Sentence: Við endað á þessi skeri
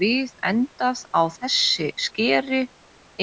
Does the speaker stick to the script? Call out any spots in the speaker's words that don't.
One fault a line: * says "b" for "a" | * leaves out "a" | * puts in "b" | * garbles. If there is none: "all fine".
all fine